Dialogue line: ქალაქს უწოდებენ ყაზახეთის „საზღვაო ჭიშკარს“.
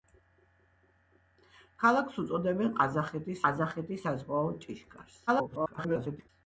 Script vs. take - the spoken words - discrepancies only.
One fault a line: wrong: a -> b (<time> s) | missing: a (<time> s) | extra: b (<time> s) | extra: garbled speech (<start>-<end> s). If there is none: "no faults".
extra: ყაზახეთის (3.5 s)
extra: garbled speech (5.3-6.3 s)